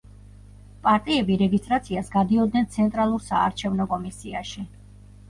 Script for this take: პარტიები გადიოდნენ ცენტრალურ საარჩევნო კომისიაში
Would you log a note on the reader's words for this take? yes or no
yes